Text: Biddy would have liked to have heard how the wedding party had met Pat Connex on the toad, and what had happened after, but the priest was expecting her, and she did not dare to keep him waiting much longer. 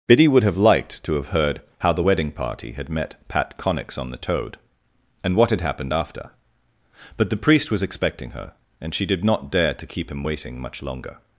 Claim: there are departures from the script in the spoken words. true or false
false